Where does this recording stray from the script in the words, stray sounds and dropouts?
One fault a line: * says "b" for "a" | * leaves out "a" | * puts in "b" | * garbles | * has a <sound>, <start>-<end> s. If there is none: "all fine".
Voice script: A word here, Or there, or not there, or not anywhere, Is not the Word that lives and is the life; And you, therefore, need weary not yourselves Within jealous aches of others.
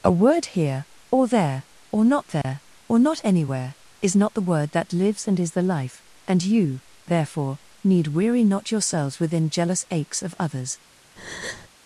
* has a dropout, 2.4-2.4 s
* has a breath, 11.2-11.7 s